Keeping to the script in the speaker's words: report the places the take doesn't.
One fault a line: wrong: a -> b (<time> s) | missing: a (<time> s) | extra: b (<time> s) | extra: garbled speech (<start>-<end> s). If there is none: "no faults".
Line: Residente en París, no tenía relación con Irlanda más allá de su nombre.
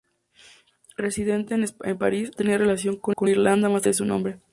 missing: no (2.3 s)
extra: con (3.1 s)
missing: allá (3.9 s)